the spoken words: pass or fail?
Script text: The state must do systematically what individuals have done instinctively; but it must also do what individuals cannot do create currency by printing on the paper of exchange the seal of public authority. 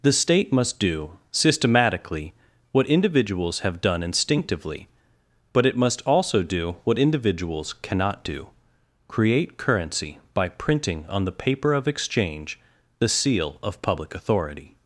pass